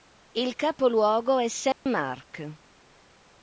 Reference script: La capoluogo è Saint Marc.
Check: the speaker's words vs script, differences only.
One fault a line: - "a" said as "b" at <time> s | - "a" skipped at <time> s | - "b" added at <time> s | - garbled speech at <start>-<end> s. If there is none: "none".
- "La" said as "Il" at 0.3 s